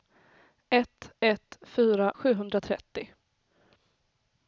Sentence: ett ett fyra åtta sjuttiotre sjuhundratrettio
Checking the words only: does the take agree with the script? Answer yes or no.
no